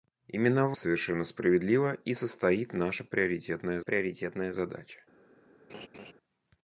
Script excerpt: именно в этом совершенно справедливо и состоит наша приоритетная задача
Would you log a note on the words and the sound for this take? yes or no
yes